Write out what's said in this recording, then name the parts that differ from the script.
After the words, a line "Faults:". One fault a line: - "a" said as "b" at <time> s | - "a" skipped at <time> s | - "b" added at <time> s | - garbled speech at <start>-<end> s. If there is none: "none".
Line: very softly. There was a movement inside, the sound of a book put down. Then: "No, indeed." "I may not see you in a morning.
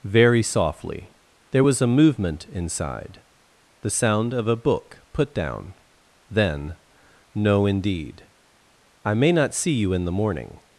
very softly. There was a movement inside, the sound of a book put down. Then: "No, indeed." "I may not see you in the morning.
Faults:
- "a" said as "the" at 10.1 s